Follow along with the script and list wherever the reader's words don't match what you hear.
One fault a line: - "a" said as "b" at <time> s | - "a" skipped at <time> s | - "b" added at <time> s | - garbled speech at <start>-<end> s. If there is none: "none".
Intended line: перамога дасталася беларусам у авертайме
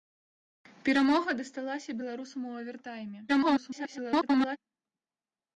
- garbled speech at 3.3-4.6 s